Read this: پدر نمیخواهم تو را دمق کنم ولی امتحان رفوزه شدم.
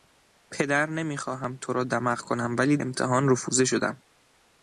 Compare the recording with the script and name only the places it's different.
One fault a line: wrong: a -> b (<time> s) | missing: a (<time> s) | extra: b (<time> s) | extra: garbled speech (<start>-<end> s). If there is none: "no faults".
no faults